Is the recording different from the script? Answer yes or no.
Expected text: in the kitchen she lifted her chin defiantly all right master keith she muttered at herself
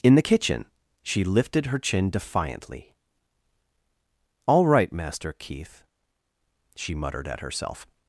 no